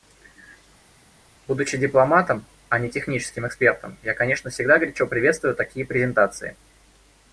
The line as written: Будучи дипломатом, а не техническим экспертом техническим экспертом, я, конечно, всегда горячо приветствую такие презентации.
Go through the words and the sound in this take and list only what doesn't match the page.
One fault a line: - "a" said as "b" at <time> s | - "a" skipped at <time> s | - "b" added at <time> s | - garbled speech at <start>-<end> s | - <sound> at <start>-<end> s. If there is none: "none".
- "техническим экспертом" skipped at 4.0 s